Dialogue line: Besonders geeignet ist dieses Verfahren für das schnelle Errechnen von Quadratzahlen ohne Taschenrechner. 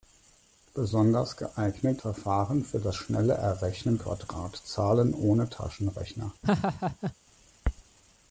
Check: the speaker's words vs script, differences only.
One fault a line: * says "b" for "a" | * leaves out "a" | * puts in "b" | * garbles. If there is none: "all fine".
* leaves out "ist dieses"
* leaves out "von"